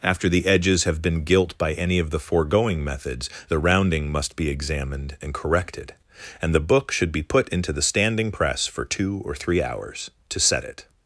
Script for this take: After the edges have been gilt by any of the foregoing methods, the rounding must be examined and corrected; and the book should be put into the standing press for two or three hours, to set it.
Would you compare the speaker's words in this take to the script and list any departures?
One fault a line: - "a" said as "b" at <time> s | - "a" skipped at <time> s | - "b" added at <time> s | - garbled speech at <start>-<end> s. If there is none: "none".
none